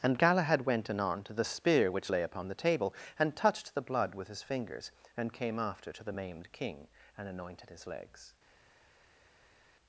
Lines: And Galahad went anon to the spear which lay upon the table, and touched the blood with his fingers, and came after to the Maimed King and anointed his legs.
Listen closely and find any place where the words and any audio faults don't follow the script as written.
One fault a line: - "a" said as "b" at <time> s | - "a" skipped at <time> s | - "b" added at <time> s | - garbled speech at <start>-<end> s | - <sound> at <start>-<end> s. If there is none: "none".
none